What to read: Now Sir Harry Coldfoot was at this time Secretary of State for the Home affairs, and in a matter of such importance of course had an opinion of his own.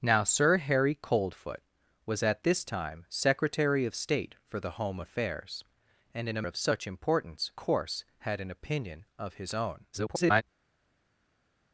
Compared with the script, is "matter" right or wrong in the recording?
wrong